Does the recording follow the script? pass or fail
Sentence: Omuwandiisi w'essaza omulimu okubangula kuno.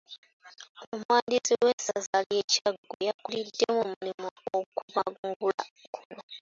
fail